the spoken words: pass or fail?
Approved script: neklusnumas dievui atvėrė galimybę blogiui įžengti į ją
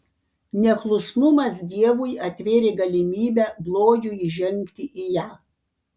pass